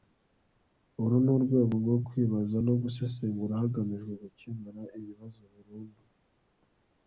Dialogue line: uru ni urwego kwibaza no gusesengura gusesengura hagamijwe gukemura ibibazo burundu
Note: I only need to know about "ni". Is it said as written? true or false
true